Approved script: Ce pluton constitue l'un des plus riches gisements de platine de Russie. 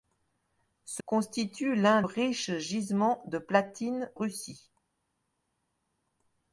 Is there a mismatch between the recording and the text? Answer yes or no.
yes